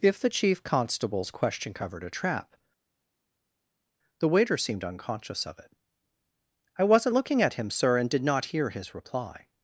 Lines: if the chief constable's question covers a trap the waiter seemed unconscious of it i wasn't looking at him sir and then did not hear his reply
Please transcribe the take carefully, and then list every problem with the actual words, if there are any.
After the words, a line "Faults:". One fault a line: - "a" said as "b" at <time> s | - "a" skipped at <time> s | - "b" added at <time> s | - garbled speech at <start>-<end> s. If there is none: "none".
if the chief constable's question covered a trap the waiter seemed unconscious of it i wasn't looking at him sir and did not hear his reply
Faults:
- "covers" said as "covered" at 1.7 s
- "then" skipped at 8.1 s